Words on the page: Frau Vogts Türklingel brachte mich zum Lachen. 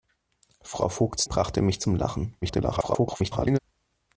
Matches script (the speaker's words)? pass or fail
fail